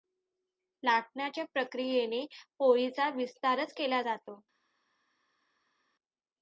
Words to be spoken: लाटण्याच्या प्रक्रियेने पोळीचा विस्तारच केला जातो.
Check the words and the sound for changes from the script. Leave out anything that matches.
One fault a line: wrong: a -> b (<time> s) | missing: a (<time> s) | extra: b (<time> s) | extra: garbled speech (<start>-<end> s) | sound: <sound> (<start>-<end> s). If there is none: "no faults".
no faults